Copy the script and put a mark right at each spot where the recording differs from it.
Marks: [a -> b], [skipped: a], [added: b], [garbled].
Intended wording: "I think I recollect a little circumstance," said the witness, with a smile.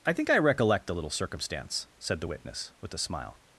"I think I recollect a little circumstance," said the witness, with a smile.